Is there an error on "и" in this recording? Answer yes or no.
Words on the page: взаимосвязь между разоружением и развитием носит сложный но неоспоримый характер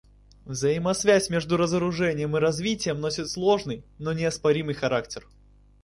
no